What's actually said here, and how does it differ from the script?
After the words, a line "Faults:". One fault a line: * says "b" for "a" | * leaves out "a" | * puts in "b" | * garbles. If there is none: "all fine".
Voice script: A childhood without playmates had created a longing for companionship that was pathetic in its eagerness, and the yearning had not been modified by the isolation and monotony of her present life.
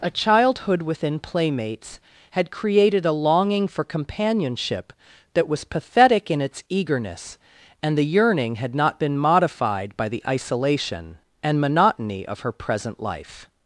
A childhood within playmates had created a longing for companionship that was pathetic in its eagerness, and the yearning had not been modified by the isolation and monotony of her present life.
Faults:
* says "within" for "without"